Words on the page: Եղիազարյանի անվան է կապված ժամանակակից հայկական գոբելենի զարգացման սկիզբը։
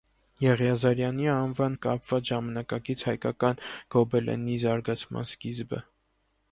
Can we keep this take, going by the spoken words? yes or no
yes